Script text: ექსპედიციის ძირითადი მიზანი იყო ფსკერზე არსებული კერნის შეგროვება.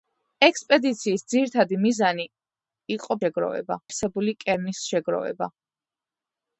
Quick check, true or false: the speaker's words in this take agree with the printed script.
false